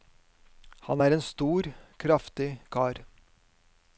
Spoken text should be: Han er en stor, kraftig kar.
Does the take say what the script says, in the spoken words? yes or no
yes